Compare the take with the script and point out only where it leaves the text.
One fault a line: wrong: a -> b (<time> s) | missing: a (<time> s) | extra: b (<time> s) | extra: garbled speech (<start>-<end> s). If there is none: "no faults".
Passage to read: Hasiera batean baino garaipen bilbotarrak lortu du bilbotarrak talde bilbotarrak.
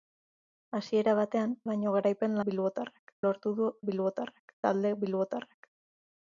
no faults